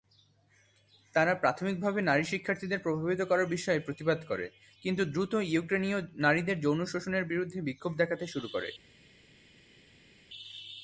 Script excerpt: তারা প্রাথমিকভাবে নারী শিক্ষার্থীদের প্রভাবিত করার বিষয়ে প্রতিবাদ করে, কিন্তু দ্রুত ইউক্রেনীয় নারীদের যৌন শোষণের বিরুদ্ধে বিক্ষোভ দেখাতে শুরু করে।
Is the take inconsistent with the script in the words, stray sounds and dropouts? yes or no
no